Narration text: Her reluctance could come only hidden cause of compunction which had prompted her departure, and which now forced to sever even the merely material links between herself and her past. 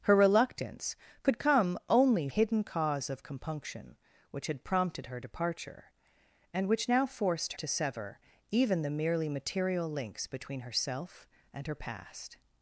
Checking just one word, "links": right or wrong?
right